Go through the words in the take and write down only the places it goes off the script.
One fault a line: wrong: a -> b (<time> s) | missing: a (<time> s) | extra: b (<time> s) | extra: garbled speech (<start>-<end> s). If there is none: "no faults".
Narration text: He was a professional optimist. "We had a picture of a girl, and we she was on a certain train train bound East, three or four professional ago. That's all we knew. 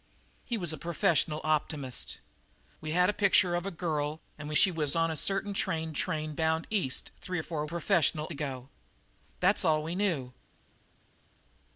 no faults